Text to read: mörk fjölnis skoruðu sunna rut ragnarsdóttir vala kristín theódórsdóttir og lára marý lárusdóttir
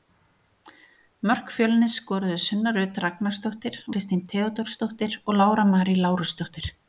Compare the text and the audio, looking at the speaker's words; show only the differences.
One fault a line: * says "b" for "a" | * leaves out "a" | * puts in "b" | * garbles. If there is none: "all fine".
* leaves out "vala"